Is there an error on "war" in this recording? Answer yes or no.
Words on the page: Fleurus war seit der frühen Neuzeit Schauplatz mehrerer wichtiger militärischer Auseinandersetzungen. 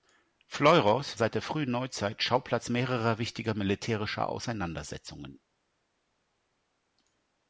yes